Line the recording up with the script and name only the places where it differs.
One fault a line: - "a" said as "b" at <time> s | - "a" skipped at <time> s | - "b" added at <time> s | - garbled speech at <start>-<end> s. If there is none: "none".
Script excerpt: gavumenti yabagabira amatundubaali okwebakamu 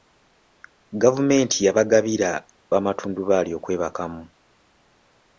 none